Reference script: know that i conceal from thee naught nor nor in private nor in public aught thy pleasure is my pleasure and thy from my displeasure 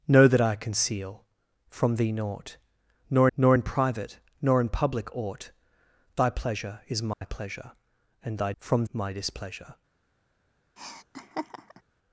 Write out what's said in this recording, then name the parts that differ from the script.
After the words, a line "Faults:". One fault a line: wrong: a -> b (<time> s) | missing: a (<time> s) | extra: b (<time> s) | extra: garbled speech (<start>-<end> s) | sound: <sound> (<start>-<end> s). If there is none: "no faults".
know that i conceal from thee naught nor nor in private nor in public aught thy pleasure is my pleasure and thy from my displeasure
Faults:
sound: dropout (7.1-7.2 s)
sound: laugh (10.8-11.8 s)